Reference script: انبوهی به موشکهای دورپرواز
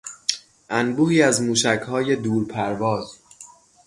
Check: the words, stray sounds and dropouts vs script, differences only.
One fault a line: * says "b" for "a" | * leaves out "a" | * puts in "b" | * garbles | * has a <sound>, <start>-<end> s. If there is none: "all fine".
* says "از" for "به"